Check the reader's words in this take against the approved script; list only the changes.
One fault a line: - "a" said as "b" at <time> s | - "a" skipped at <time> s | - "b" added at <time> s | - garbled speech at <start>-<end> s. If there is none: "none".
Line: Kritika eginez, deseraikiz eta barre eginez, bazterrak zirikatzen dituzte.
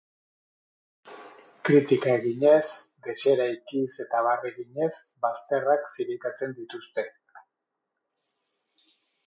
none